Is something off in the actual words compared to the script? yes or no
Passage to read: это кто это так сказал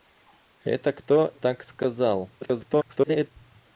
yes